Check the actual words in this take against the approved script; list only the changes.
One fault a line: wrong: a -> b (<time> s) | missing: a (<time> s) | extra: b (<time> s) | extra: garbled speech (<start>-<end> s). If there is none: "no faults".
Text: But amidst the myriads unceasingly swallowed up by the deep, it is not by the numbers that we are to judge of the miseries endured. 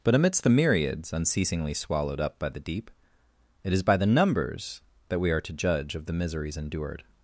missing: not (3.8 s)